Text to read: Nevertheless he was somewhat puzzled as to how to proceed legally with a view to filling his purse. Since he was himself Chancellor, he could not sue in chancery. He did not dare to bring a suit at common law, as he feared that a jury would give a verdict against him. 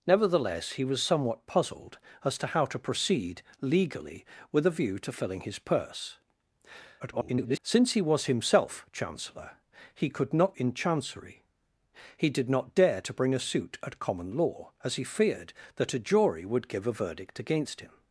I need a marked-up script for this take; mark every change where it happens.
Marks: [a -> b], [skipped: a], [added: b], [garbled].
Nevertheless he was somewhat puzzled as to how to proceed legally with a view to filling his purse. [garbled] Since he was himself Chancellor, he could not [skipped: sue] in chancery. He did not dare to bring a suit at common law, as he feared that a jury would give a verdict against him.